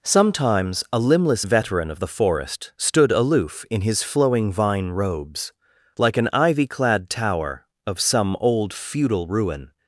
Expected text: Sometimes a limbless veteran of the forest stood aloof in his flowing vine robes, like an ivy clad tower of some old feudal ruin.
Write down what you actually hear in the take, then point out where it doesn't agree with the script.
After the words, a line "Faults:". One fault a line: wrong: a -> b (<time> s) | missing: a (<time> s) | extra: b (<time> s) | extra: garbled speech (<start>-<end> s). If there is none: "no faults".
Sometimes a limbless veteran of the forest stood aloof in his flowing vine robes, like an ivy clad tower of some old feudal ruin.
Faults:
no faults